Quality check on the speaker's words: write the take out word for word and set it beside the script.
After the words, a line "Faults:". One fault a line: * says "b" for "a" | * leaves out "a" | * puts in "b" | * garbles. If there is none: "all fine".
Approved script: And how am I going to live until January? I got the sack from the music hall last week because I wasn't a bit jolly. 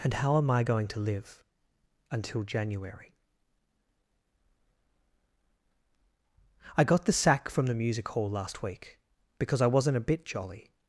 And how am I going to live until January? I got the sack from the music hall last week because I wasn't a bit jolly.
Faults:
all fine